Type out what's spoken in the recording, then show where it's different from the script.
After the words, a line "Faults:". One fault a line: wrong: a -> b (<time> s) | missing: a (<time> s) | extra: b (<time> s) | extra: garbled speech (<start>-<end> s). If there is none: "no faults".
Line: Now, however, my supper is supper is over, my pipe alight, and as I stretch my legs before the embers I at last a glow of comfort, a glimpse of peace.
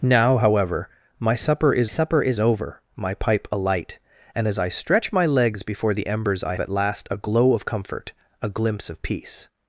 Now, however, my supper is supper is over, my pipe alight, and as I stretch my legs before the embers I at last a glow of comfort, a glimpse of peace.
Faults:
no faults